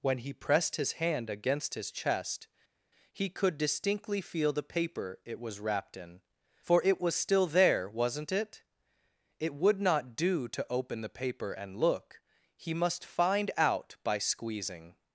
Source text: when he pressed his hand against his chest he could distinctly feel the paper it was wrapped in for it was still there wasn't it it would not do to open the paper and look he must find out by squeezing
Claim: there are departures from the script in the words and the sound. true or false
false